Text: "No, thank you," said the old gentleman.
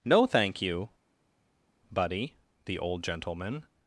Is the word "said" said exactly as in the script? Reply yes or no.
no